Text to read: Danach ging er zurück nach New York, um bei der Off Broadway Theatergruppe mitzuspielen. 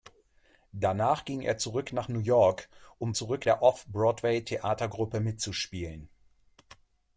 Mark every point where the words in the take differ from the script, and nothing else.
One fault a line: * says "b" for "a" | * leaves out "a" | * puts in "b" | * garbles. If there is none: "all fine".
* says "zurück" for "bei"